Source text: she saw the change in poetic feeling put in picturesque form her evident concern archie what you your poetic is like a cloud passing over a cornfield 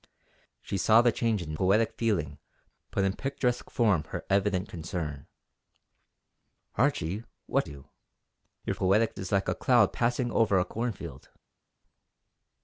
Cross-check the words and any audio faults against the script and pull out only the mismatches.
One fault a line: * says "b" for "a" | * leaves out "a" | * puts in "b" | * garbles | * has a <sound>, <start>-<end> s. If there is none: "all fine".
all fine